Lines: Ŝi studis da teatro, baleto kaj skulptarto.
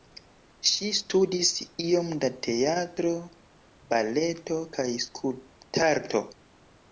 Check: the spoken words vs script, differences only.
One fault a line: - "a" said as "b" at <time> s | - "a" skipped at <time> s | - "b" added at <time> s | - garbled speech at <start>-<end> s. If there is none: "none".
- "iom" added at 1.9 s